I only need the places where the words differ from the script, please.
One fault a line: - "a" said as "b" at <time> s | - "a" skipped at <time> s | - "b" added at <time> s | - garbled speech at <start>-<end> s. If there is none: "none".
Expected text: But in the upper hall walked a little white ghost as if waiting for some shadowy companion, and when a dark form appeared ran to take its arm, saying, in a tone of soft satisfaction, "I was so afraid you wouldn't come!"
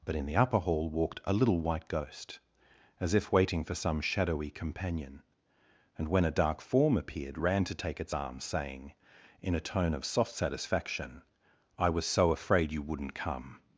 none